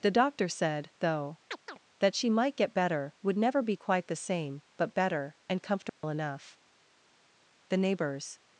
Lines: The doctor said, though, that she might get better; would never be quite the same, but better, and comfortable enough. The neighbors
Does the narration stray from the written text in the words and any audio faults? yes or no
yes